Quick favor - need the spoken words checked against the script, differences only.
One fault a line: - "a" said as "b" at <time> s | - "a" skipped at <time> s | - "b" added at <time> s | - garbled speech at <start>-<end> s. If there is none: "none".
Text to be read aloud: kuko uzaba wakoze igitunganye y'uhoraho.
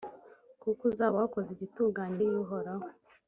none